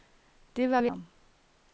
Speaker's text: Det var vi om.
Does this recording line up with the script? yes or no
yes